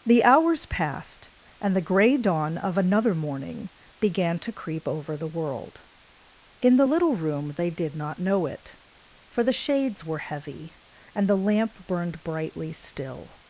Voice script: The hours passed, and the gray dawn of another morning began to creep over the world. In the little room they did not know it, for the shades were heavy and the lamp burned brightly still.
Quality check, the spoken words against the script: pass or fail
pass